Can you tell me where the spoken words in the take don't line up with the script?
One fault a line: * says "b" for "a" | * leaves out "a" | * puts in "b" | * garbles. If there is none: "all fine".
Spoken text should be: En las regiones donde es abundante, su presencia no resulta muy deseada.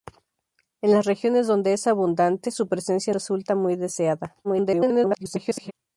* leaves out "no"
* garbles